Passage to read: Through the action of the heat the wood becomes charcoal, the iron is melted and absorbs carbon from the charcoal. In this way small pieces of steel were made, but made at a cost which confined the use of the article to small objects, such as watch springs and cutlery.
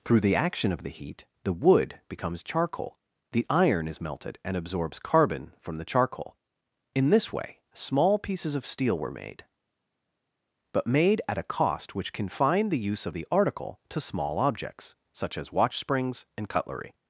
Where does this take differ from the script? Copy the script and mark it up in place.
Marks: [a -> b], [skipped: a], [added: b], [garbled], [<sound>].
Through the action of the heat the wood becomes charcoal, the iron is melted and absorbs carbon from the charcoal. In this way small pieces of steel were made, but made at a cost which confined the use of the article to small objects, such as watch springs and cutlery.